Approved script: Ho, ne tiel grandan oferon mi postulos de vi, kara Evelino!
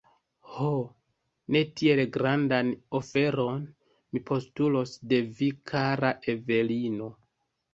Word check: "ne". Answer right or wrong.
right